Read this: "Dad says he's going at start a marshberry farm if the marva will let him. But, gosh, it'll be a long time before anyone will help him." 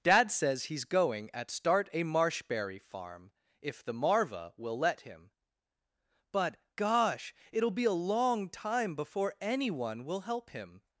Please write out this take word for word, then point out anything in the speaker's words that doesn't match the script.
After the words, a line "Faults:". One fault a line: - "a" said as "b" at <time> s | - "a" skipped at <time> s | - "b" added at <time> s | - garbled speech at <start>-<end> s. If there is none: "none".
"Dad says he's going at start a marshberry farm if the marva will let him. But, gosh, it'll be a long time before anyone will help him."
Faults:
none